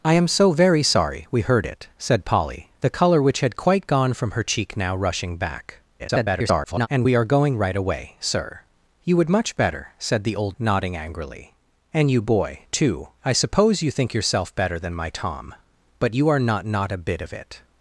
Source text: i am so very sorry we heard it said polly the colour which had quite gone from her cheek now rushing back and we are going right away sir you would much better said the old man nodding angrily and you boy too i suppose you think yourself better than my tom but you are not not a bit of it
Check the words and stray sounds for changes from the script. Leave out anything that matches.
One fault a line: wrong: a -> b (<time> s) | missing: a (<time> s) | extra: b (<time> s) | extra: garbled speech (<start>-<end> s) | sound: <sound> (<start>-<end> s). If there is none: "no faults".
extra: garbled speech (6.0-6.9 s)
missing: man (10.6 s)